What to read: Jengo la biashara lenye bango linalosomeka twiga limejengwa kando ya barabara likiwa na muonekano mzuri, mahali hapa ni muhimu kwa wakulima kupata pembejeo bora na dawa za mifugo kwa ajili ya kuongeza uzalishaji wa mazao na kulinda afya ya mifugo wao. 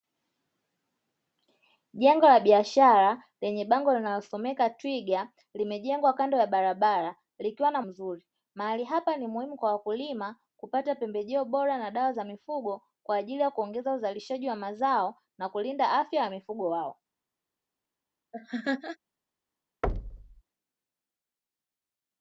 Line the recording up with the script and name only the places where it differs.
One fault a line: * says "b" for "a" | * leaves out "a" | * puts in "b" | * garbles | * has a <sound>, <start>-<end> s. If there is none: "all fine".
* leaves out "muonekano"
* has a laugh, 18.3-19.0 s
* has a thud, 19.8-20.4 s